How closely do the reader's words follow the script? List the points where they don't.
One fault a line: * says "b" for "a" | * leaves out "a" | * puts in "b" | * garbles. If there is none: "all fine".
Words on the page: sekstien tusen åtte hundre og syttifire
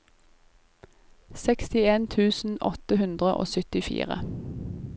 all fine